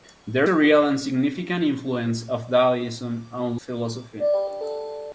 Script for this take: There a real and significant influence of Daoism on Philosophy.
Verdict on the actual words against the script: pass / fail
pass